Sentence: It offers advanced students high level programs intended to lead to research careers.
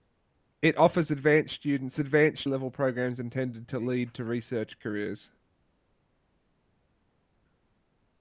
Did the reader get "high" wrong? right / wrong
wrong